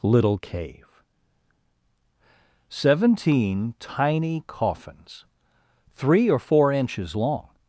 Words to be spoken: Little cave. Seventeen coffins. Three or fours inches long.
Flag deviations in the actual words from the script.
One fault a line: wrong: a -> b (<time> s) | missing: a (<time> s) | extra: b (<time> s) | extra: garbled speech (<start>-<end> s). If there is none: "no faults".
extra: tiny (3.8 s)
wrong: fours -> four (6.4 s)